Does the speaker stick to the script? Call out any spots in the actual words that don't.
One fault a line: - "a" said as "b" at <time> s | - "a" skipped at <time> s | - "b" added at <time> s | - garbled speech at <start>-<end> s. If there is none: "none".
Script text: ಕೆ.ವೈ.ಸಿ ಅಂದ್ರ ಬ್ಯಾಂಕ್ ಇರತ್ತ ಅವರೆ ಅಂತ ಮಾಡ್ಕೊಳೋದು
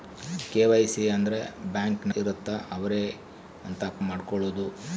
none